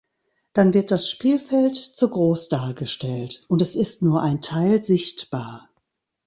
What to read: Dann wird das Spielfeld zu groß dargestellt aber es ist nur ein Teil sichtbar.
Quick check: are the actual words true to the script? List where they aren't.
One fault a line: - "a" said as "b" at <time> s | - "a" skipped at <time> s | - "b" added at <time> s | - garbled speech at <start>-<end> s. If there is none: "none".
- "aber" said as "und" at 3.5 s